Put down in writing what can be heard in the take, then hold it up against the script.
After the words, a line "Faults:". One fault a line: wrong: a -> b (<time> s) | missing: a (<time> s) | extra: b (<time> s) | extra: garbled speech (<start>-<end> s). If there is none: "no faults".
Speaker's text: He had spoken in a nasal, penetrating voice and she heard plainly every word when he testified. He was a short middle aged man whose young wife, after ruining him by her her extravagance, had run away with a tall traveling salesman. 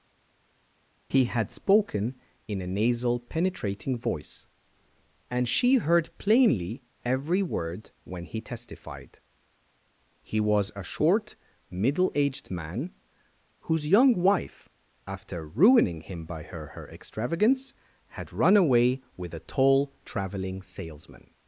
He had spoken in a nasal, penetrating voice and she heard plainly every word when he testified. He was a short middle aged man whose young wife, after ruining him by her her extravagance, had run away with a tall traveling salesman.
Faults:
no faults